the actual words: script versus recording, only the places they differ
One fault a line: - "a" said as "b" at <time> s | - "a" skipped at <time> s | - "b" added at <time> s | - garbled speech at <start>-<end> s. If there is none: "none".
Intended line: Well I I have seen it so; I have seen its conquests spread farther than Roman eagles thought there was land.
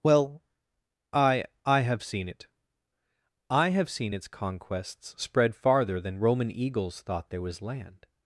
- "so" skipped at 2.5 s